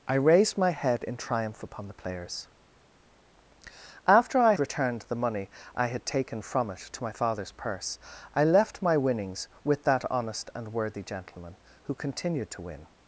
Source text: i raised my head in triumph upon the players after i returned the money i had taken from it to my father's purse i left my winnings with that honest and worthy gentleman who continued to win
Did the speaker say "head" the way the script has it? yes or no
yes